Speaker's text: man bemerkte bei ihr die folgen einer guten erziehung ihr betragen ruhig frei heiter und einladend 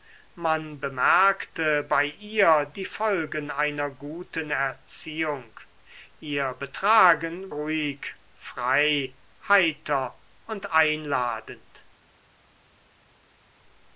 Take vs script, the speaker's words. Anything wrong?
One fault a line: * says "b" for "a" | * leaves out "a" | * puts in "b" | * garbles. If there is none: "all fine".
all fine